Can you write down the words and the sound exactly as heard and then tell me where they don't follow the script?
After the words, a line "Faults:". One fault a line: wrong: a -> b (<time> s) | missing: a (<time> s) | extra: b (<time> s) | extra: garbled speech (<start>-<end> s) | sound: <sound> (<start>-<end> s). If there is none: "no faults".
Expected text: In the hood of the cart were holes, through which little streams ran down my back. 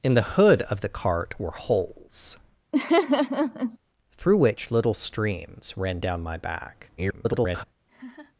In the hood of the cart were holes, through which little streams ran down my back. [garbled]
Faults:
sound: laugh (2.7-3.8 s)
extra: garbled speech (7.0-7.6 s)
sound: laugh (7.9-8.4 s)